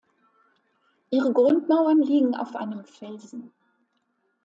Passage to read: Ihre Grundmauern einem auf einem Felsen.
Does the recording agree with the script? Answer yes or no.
no